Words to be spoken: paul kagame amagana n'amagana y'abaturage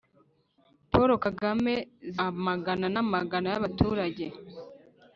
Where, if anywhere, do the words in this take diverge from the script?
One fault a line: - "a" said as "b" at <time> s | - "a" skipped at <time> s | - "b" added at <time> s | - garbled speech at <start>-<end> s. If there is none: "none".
none